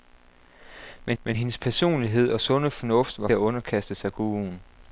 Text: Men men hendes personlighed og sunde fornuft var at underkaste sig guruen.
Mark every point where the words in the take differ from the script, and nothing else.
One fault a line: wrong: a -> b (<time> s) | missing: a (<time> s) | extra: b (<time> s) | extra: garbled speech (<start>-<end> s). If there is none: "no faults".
no faults